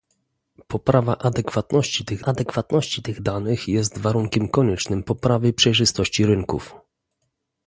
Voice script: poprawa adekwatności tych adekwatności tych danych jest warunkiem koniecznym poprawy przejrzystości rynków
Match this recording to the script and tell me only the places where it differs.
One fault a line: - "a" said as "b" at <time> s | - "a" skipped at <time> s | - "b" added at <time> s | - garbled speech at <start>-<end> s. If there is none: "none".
none